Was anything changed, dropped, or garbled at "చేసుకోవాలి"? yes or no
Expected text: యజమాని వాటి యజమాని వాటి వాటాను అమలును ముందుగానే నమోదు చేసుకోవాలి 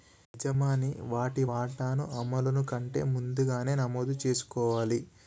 no